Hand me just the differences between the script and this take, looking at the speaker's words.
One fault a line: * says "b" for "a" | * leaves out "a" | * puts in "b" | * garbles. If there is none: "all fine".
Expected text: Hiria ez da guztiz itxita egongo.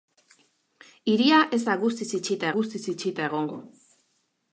* puts in "guztiz itxita"